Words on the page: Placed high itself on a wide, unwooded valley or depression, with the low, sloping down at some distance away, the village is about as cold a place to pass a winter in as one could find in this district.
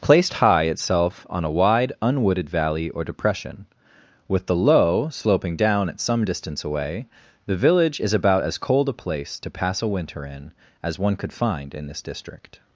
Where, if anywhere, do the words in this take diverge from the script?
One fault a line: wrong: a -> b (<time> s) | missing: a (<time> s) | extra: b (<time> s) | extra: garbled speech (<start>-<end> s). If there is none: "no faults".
no faults